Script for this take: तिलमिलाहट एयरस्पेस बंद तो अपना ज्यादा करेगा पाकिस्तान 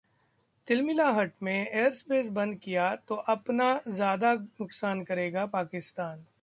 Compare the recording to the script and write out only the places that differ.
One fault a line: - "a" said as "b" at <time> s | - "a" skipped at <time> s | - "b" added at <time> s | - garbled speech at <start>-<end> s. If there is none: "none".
- "में" added at 1.4 s
- "किया" added at 2.6 s
- "नुकसान" added at 4.3 s